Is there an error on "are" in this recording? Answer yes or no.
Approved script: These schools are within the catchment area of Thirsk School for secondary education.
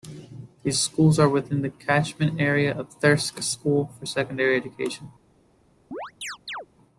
no